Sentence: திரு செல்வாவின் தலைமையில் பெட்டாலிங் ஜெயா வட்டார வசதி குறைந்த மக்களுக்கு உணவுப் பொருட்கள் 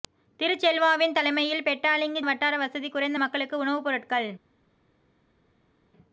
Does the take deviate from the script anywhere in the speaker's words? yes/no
yes